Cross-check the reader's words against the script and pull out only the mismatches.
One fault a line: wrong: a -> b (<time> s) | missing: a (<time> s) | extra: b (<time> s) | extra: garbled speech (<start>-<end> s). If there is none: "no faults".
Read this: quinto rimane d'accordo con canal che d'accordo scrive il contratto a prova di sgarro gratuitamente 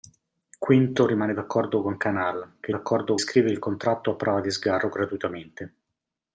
no faults